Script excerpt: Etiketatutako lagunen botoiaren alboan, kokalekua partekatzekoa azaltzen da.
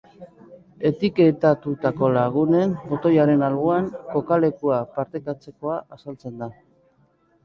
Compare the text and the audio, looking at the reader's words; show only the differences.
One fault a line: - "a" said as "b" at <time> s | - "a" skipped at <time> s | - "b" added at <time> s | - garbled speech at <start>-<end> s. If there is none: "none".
none